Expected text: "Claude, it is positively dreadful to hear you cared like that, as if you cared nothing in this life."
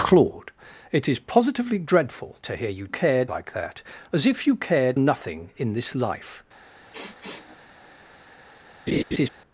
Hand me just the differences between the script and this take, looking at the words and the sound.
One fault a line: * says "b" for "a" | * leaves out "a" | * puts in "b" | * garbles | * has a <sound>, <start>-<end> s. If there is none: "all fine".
* has a sniff, 6.9-7.6 s
* has a laugh, 8.9-9.3 s